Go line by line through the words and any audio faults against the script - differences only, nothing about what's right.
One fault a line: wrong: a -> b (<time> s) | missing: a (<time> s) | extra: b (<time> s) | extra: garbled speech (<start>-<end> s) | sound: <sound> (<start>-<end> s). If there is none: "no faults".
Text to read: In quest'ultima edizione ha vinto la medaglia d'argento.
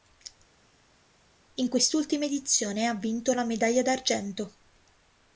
no faults